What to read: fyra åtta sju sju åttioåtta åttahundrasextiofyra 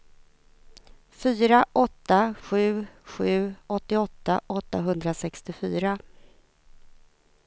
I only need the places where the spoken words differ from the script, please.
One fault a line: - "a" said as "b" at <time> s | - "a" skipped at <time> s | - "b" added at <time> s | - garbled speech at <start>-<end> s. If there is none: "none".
none